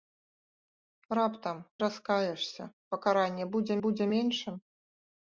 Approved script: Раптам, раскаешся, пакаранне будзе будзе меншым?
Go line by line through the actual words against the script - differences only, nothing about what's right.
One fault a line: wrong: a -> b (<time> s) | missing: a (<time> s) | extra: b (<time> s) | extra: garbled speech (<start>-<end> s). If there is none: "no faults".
no faults